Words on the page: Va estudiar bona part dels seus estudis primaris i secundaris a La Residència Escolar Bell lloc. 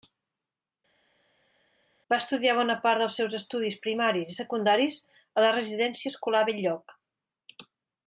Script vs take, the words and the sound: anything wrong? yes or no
no